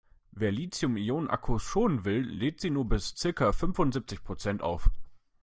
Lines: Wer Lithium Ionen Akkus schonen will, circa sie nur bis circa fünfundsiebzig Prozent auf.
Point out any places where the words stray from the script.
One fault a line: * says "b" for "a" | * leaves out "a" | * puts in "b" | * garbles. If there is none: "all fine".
* says "lädt" for "circa"